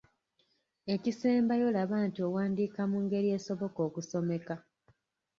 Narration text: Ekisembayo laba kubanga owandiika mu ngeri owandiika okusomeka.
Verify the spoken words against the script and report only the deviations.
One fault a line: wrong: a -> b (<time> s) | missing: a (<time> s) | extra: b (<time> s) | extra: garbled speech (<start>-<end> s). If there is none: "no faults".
wrong: kubanga -> nti (2.1 s)
wrong: owandiika -> esoboka (3.4 s)